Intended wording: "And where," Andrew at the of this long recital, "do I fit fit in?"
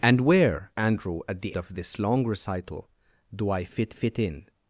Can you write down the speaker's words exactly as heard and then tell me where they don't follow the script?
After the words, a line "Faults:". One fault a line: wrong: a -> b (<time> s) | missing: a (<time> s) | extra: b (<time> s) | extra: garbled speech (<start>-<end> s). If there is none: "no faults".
"And where," Andrew at the of this long recital, "do I fit fit in?"
Faults:
no faults